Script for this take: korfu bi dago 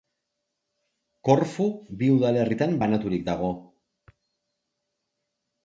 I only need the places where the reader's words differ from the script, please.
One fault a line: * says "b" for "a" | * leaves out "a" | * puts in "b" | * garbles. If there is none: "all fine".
* puts in "udalerritan banaturik"